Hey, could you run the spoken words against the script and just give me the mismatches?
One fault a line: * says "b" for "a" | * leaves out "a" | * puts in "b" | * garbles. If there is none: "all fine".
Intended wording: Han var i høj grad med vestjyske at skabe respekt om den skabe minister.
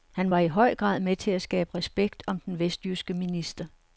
* says "til" for "vestjyske"
* says "vestjyske" for "skabe"